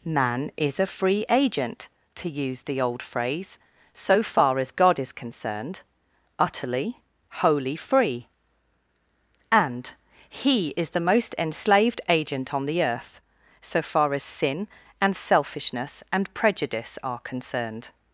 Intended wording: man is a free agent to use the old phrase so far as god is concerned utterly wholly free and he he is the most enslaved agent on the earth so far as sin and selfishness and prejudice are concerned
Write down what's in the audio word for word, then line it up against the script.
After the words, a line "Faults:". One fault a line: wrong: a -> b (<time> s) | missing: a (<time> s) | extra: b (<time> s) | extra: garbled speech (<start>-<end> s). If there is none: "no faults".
man is a free agent to use the old phrase so far as god is concerned utterly wholly free and he is the most enslaved agent on the earth so far as sin and selfishness and prejudice are concerned
Faults:
missing: he (10.7 s)